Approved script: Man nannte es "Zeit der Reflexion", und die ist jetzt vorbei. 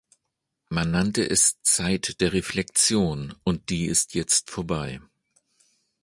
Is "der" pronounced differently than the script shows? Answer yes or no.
no